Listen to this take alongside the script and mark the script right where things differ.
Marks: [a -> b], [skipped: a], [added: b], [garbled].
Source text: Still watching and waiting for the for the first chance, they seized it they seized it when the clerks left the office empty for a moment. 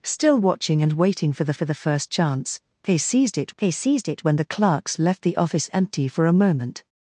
Still watching and waiting for the for the first chance, they seized it they seized it when the clerks left the office empty for a moment.